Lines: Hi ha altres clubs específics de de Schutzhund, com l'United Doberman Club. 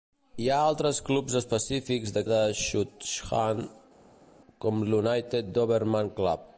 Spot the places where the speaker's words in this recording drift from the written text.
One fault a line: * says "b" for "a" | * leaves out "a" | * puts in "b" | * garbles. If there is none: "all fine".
all fine